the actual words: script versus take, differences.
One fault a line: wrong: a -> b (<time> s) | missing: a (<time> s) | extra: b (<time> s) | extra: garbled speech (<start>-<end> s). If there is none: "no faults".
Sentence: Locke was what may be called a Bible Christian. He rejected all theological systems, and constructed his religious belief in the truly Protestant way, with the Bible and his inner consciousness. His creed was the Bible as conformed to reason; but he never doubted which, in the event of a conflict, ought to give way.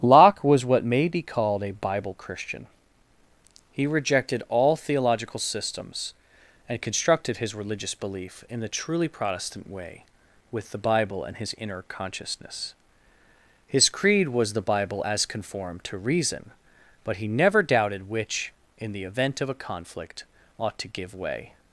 no faults